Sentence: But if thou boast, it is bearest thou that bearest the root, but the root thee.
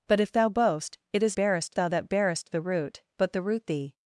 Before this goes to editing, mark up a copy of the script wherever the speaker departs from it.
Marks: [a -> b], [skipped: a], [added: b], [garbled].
But if thou boast, it is bearest thou that bearest the root, but the root thee.